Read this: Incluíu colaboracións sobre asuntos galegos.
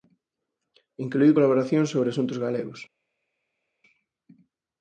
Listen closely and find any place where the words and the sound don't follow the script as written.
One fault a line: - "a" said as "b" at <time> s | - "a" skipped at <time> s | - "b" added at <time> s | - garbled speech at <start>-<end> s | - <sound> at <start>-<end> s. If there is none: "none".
none